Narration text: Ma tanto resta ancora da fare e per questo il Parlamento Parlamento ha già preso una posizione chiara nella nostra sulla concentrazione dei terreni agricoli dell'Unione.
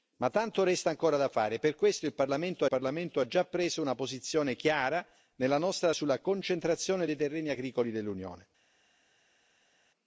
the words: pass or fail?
pass